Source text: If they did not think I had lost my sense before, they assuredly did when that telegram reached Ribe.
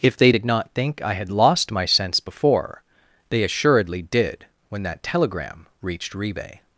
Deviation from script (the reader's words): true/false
false